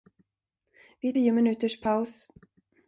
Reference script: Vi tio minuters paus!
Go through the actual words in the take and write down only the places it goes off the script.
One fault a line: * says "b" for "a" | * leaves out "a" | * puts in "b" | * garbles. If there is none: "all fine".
all fine